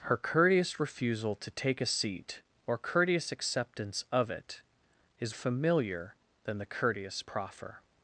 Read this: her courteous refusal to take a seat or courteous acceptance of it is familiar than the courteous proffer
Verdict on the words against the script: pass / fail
pass